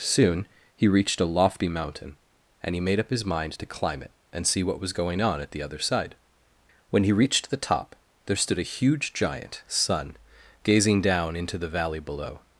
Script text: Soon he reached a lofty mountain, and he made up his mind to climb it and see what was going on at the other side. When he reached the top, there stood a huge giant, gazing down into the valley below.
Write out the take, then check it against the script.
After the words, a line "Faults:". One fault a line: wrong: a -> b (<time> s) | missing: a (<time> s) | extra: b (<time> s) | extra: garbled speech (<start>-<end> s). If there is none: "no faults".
Soon he reached a lofty mountain, and he made up his mind to climb it and see what was going on at the other side. When he reached the top, there stood a huge giant, sun gazing down into the valley below.
Faults:
extra: sun (9.7 s)